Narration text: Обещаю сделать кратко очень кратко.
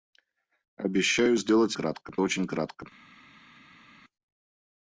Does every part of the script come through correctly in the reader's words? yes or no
yes